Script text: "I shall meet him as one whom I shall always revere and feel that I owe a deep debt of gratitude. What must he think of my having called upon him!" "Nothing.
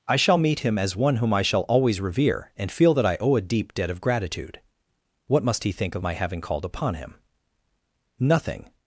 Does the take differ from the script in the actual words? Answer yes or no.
no